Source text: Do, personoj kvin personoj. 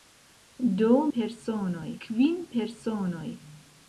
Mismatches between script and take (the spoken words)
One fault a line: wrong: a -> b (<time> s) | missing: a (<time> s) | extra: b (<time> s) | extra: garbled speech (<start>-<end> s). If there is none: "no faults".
no faults